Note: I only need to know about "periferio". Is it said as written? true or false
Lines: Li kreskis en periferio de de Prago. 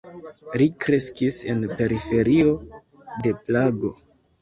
true